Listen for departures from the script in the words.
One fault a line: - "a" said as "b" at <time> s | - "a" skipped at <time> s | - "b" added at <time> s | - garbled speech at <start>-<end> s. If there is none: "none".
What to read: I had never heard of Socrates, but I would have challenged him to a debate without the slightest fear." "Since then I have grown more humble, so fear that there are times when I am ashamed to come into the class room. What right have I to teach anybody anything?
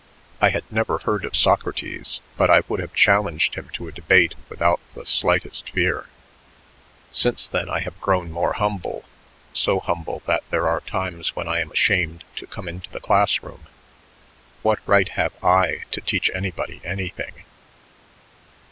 - "fear" said as "humble" at 9.8 s